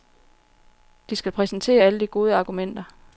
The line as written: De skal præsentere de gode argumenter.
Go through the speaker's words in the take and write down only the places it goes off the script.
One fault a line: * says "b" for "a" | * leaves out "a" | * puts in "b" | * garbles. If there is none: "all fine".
* puts in "alle"